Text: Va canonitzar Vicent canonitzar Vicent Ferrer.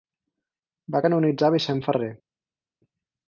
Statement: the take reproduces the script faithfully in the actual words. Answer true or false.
false